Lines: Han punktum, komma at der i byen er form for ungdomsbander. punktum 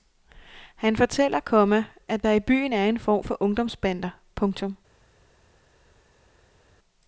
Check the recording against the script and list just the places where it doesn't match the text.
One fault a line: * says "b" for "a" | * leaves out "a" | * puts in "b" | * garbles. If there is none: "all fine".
* says "fortæller" for "punktum"
* puts in "en"